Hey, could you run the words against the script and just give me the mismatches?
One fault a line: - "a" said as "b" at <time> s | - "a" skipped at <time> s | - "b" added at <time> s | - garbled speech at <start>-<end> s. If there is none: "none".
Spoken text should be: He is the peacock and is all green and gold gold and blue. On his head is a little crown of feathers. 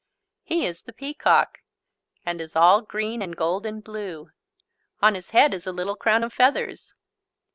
- "gold" skipped at 3.7 s